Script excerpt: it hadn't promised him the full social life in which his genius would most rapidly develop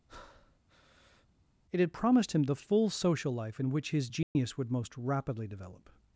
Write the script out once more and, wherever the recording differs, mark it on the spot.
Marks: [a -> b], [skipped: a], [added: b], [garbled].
it [hadn't -> had] promised him the full social life in which his genius would most rapidly develop